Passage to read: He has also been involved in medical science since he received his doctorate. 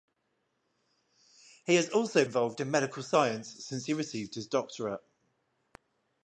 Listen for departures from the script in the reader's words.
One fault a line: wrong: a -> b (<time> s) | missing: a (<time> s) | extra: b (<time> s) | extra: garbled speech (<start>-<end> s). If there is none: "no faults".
missing: been (2.2 s)